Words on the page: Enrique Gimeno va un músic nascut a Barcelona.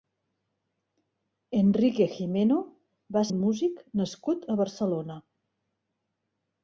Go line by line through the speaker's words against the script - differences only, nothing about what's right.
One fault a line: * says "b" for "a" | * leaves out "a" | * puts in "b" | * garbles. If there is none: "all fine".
all fine